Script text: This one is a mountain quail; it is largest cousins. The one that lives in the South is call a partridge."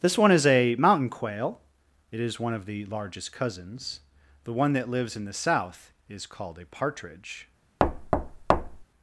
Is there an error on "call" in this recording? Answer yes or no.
yes